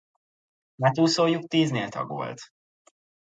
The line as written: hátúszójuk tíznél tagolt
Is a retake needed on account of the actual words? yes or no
no